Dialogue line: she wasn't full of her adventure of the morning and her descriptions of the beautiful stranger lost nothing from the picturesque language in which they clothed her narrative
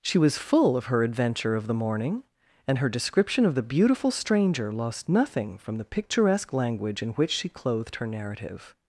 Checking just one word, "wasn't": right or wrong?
wrong